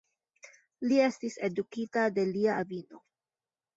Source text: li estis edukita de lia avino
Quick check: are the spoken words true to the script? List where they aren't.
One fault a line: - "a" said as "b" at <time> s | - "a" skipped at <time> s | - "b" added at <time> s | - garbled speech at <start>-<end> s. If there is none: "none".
none